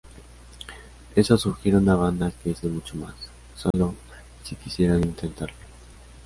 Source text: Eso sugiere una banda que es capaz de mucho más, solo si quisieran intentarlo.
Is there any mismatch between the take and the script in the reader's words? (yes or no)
yes